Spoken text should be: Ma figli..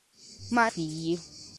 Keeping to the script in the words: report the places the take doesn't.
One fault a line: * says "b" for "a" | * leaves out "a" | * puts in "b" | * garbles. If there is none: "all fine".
all fine